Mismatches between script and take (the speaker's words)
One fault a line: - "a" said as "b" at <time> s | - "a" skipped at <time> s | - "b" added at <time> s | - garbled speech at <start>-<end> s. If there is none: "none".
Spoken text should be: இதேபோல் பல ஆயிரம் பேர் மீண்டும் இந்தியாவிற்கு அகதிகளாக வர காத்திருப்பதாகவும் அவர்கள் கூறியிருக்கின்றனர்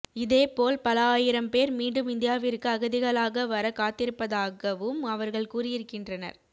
none